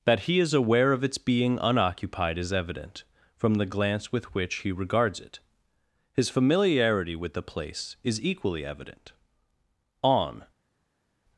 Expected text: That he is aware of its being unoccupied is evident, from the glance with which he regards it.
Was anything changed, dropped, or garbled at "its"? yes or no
no